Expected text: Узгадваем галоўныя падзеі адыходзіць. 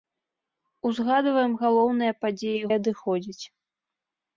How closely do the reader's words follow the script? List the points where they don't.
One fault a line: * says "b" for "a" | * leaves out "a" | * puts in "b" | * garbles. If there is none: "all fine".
all fine